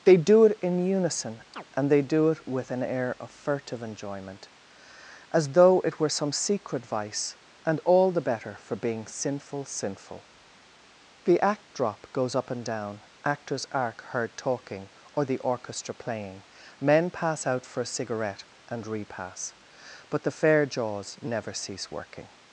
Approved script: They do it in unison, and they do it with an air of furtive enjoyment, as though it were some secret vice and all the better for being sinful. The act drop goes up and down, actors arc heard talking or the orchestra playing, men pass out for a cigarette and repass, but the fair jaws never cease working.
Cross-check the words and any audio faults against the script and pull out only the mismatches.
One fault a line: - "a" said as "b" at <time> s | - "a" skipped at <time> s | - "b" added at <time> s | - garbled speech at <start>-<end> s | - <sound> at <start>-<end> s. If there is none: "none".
- chirp at 1.5-1.6 s
- "sinful" added at 9.7 s